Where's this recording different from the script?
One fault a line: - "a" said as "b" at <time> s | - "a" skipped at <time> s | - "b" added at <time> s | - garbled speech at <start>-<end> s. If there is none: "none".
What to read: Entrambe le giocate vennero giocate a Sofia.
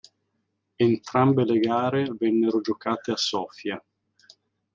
- "giocate" said as "gare" at 1.6 s